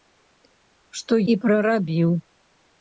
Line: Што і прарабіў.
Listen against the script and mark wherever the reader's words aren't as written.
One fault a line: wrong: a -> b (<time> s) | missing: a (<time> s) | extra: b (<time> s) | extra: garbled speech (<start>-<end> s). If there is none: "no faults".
no faults